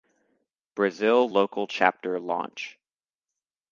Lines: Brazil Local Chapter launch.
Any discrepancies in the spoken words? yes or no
no